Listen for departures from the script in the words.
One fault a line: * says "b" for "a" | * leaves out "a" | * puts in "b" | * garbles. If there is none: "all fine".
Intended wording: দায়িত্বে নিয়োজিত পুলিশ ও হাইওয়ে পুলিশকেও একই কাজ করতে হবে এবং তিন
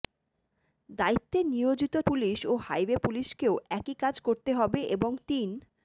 all fine